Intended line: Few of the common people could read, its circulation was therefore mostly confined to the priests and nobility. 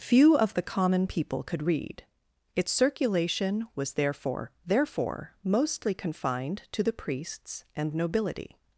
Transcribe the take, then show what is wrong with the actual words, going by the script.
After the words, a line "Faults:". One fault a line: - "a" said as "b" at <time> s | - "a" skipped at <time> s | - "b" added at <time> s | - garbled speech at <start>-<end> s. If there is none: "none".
Few of the common people could read, its circulation was therefore therefore mostly confined to the priests and nobility.
Faults:
- "therefore" added at 4.7 s